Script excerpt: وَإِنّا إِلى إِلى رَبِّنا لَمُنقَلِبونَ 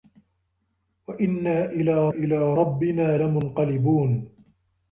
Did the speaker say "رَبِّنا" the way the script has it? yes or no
yes